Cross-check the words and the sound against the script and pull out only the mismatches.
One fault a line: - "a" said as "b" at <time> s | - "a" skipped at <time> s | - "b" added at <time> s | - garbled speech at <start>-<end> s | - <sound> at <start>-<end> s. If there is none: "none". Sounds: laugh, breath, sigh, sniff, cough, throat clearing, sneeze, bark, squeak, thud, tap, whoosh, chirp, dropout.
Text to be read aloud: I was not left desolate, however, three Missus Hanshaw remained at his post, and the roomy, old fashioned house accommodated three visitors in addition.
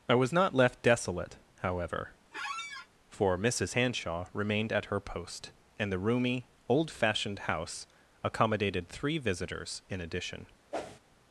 - squeak at 2.3-2.9 s
- "three" said as "for" at 3.1 s
- "his" said as "her" at 4.9 s
- whoosh at 10.7-11.0 s